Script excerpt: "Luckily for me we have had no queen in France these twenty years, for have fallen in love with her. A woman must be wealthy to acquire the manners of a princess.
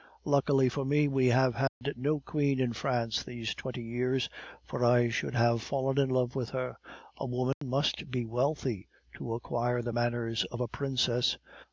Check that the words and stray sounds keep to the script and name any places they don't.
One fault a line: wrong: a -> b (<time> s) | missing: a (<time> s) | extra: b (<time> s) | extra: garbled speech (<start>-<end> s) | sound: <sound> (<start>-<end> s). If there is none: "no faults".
sound: dropout (1.7-1.8 s)
extra: I should (4.8 s)
sound: dropout (7.5-7.6 s)